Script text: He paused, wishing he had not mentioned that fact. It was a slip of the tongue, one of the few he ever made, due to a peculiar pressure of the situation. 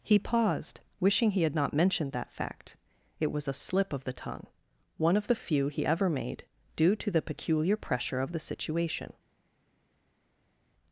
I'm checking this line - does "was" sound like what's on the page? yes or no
yes